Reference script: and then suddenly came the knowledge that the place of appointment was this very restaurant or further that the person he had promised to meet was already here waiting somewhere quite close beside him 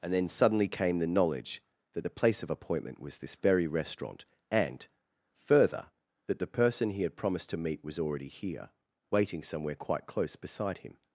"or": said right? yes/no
no